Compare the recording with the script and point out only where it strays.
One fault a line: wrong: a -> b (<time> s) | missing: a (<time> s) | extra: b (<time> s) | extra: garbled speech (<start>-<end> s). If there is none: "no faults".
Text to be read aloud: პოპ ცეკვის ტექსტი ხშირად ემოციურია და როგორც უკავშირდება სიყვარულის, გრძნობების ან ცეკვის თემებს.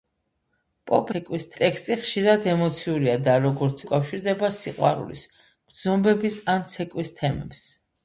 no faults